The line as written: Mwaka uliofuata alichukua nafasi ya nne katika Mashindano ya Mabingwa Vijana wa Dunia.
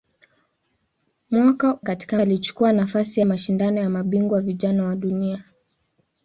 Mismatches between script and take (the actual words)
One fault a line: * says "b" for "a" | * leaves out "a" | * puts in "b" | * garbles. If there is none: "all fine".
* says "katika" for "uliofuata"
* leaves out "ya nne katika"